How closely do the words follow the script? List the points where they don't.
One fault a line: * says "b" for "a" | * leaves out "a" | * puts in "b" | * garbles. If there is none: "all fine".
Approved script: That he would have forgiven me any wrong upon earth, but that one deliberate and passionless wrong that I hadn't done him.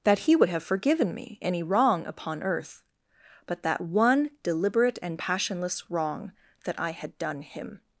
* says "had" for "hadn't"